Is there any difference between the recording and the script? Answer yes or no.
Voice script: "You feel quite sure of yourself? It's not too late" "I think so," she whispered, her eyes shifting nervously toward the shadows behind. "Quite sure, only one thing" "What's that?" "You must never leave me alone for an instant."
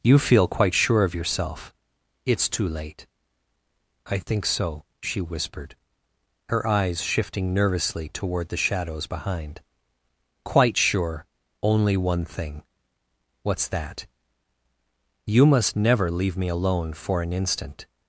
yes